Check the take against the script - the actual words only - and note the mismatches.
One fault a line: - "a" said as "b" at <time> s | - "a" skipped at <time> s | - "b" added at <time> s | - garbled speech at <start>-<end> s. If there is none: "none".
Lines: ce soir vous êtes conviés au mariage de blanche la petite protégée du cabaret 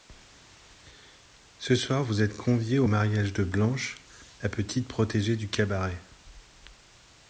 none